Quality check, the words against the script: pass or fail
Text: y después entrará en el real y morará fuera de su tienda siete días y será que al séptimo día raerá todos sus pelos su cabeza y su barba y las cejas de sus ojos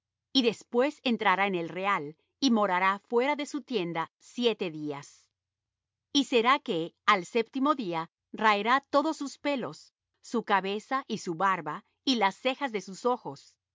pass